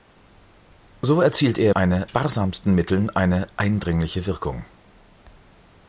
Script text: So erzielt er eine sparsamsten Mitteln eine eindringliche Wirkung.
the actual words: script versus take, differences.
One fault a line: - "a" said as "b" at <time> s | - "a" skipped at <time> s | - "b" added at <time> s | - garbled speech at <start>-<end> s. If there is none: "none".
none